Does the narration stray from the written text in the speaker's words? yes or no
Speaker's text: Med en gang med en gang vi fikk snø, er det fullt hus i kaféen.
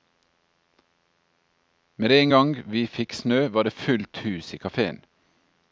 yes